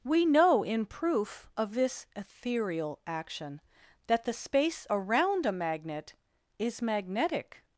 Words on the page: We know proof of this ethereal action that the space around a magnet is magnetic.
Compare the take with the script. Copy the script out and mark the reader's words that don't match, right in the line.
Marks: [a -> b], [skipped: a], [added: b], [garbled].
We know [added: in] proof of this ethereal action that the space around a magnet is magnetic.